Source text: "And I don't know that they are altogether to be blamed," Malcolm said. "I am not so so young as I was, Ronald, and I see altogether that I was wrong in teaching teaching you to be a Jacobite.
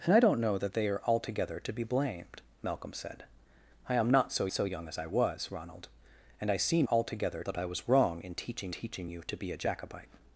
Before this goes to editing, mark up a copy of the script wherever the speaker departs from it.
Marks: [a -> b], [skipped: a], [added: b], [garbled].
"And I don't know that they are altogether to be blamed," Malcolm said. "I am not so so young as I was, Ronald, and I see altogether that I was wrong in teaching teaching you to be a Jacobite.